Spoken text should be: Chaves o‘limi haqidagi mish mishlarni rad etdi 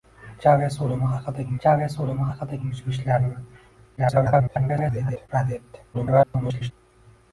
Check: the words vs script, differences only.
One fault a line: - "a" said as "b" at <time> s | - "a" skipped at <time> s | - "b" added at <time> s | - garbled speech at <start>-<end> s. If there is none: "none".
- "chaves o‘limi haqidagi" added at 1.6 s
- garbled speech at 4.0-5.3 s
- garbled speech at 5.9-6.7 s